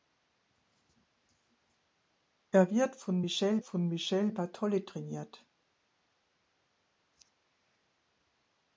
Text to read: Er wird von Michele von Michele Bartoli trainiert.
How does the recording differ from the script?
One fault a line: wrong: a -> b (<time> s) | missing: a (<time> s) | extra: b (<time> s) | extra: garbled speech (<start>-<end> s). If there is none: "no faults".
no faults